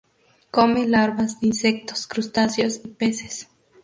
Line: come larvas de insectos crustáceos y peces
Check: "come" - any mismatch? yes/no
no